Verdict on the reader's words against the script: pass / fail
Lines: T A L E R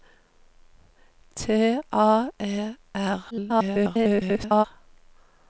fail